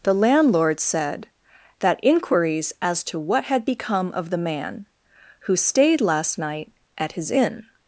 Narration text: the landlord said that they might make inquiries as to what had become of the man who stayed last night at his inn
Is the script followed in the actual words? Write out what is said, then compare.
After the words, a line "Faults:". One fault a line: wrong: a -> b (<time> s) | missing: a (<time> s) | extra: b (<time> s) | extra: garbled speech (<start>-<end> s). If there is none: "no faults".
the landlord said that inquiries as to what had become of the man who stayed last night at his inn
Faults:
missing: they might make (2.0 s)